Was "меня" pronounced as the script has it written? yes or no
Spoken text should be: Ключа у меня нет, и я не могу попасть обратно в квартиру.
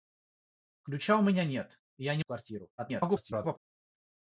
yes